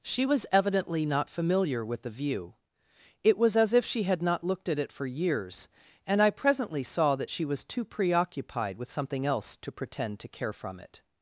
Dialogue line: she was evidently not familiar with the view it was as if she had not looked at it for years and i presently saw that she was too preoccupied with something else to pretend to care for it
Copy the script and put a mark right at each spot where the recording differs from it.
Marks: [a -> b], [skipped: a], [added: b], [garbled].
she was evidently not familiar with the view it was as if she had not looked at it for years and i presently saw that she was too preoccupied with something else to pretend to care [for -> from] it